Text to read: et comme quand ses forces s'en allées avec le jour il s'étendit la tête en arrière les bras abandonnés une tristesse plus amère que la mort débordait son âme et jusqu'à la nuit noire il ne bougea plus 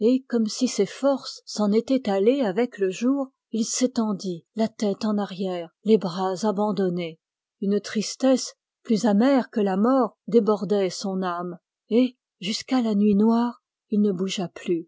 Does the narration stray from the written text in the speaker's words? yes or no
yes